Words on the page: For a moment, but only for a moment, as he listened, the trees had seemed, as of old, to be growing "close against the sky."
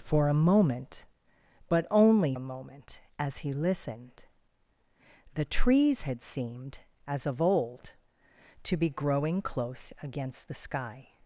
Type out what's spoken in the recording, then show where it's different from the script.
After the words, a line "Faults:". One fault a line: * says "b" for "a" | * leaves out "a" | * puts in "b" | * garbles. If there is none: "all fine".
For a moment, but only a moment, as he listened, the trees had seemed, as of old, to be growing "close against the sky."
Faults:
* leaves out "for"